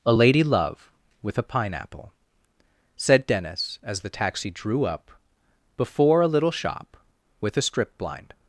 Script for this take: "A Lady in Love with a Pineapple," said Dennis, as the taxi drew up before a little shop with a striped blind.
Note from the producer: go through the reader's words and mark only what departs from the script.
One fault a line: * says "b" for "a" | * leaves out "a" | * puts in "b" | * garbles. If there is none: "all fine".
* leaves out "in"
* says "strip" for "striped"